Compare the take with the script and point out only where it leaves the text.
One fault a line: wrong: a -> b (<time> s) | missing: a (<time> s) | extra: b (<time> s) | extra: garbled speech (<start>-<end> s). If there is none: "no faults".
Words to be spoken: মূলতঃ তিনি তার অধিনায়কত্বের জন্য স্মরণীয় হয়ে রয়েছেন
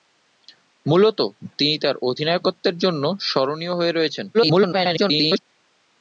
extra: garbled speech (4.3-5.4 s)